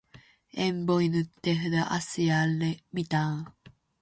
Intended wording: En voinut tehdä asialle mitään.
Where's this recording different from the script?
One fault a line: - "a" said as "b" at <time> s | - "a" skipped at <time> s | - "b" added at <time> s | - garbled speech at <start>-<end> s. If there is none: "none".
none